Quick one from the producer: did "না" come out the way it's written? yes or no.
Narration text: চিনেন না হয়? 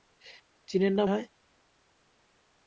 yes